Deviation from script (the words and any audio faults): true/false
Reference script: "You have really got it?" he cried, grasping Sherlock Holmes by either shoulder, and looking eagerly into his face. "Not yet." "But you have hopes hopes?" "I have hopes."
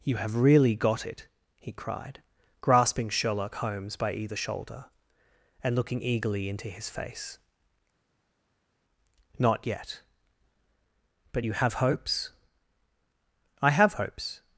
true